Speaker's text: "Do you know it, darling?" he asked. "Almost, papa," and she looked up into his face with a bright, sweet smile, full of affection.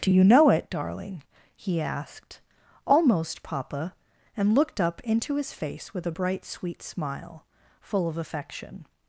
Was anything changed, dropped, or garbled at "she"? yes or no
yes